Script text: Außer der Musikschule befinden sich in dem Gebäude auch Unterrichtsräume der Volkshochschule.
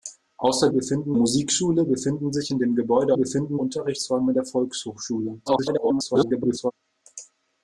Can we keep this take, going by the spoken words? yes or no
no